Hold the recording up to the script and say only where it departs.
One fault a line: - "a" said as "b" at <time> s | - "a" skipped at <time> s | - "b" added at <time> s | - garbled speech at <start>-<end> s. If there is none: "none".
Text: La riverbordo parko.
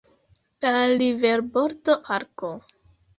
none